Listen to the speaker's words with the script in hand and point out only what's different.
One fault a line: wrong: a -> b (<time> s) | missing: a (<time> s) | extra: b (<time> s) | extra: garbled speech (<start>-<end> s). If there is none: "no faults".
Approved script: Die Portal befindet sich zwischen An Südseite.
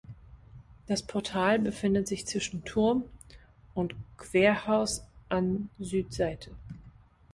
wrong: Die -> Das (0.9 s)
extra: Turm und Querhaus (2.6 s)